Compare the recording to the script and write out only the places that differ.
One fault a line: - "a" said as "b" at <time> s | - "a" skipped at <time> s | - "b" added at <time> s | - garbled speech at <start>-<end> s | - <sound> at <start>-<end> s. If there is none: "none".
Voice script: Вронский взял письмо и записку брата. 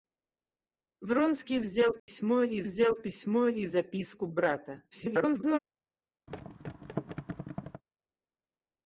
- dropout at 2.0-2.1 s
- "взял письмо и" added at 2.6 s
- garbled speech at 4.9-5.6 s
- thud at 6.3-7.8 s